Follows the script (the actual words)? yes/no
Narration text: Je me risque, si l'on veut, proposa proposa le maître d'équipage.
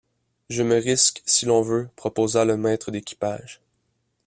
no